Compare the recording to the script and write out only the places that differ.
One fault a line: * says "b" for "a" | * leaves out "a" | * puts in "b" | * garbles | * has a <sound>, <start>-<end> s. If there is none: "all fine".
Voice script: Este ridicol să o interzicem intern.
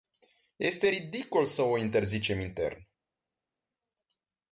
all fine